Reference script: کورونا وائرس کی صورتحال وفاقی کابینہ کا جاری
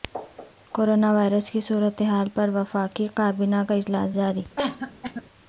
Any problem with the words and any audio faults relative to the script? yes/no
yes